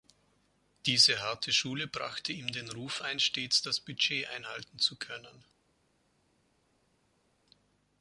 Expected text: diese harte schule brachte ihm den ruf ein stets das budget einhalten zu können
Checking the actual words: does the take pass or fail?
pass